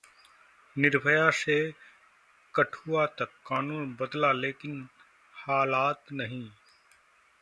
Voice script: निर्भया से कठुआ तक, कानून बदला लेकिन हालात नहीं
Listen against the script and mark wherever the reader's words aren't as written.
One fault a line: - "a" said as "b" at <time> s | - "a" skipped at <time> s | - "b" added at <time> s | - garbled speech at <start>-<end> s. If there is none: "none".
none